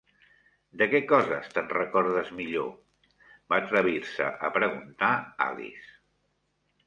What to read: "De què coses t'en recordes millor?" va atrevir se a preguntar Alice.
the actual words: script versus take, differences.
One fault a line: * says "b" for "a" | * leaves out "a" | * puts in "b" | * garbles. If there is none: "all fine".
all fine